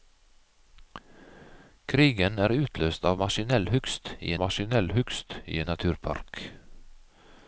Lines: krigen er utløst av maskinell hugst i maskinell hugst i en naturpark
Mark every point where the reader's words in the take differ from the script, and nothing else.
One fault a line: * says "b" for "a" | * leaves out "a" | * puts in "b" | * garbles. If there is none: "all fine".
all fine